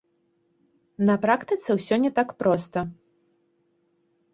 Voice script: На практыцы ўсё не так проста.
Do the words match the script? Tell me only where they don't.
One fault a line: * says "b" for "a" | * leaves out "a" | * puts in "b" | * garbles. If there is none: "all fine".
all fine